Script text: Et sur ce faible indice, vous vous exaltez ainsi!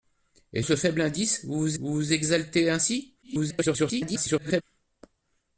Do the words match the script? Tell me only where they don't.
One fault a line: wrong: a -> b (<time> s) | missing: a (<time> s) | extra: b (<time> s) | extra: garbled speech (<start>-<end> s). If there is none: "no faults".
missing: sur (0.6 s)
extra: vous vous (1.8 s)
extra: garbled speech (3.2-4.6 s)